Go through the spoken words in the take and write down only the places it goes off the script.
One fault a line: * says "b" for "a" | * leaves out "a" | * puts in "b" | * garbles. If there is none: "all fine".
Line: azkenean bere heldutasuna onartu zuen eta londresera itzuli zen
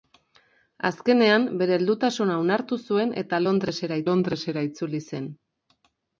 * puts in "londresera"